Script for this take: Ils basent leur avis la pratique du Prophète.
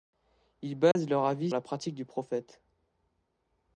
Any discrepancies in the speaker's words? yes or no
no